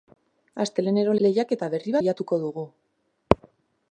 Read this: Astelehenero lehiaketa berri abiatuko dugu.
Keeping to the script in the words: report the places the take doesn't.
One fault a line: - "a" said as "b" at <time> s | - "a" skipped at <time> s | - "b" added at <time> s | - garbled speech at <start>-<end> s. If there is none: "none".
none